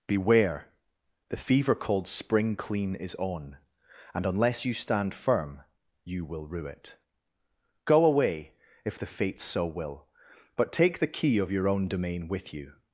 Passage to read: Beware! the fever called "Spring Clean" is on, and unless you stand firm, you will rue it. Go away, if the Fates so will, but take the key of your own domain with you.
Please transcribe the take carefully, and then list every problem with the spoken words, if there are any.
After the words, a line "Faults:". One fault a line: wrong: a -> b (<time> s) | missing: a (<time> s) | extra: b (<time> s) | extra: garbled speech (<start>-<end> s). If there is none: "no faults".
Beware! the fever called "Spring Clean" is on, and unless you stand firm, you will rue it. Go away, if the Fates so will, but take the key of your own domain with you.
Faults:
no faults